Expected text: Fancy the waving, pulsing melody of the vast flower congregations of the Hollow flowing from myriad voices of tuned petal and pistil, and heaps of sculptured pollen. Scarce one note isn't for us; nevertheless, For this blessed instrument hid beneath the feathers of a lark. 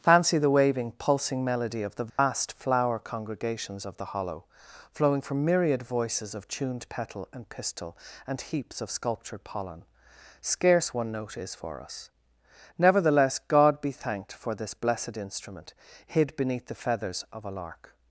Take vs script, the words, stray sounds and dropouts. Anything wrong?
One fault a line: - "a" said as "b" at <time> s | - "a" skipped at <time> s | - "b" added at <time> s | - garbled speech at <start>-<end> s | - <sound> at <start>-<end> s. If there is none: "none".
- dropout at 2.1-2.2 s
- "isn't" said as "is" at 11.4 s
- "God be thanked" added at 13.4 s